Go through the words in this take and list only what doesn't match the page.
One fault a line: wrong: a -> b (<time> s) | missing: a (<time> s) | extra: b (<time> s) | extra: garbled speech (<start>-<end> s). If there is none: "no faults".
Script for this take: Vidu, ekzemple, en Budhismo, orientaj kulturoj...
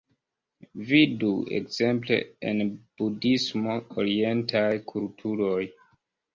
no faults